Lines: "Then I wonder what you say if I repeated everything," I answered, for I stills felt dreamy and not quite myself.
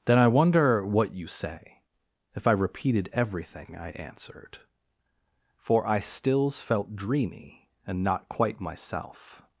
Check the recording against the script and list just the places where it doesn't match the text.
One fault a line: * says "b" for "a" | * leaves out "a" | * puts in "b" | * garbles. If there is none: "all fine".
all fine